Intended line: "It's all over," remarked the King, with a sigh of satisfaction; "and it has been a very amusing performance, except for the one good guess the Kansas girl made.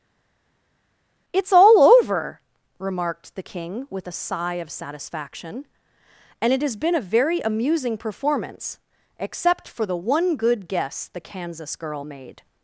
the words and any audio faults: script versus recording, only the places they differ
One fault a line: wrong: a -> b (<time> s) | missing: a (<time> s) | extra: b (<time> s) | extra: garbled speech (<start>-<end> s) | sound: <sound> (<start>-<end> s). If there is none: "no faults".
no faults